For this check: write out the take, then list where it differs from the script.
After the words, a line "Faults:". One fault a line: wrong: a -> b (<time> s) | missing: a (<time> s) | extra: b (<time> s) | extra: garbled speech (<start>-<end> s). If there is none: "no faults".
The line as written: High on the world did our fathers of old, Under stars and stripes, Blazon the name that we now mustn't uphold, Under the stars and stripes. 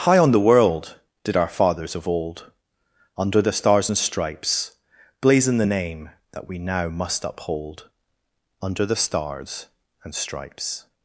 High on the world did our fathers of old, Under the stars and stripes, Blazon the name that we now must uphold, Under the stars and stripes.
Faults:
extra: the (3.4 s)
wrong: mustn't -> must (6.9 s)